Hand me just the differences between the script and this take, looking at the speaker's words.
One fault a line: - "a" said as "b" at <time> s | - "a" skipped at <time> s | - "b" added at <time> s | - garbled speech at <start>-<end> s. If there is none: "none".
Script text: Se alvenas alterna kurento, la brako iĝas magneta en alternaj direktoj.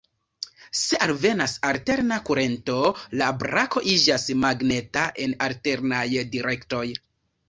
none